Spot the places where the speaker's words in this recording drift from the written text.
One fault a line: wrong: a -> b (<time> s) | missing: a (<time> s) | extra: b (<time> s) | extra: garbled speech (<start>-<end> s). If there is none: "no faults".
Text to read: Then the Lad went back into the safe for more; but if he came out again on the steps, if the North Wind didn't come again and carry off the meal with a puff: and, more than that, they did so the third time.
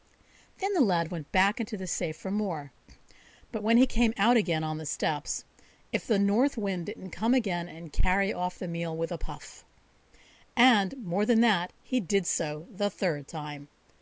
wrong: if -> when (3.6 s)
wrong: they -> he (11.8 s)